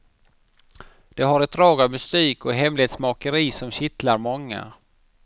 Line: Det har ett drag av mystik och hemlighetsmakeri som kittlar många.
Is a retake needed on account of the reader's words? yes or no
no